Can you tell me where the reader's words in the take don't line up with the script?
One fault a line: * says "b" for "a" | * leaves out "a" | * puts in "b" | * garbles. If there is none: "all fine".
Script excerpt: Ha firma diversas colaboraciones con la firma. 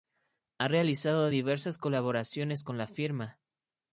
* says "realizado" for "firma"